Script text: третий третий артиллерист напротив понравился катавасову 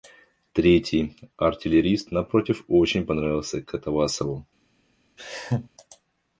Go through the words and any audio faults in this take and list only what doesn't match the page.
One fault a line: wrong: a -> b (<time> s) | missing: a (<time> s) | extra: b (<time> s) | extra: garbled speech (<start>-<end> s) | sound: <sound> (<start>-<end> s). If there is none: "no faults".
missing: третий (1.1 s)
extra: очень (2.7 s)
sound: laugh (5.2-5.7 s)